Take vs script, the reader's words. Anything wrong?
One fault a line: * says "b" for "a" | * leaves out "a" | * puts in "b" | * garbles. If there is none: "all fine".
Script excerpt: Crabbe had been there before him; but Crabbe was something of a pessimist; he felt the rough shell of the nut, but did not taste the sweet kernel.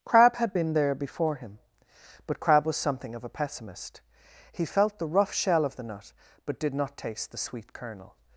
all fine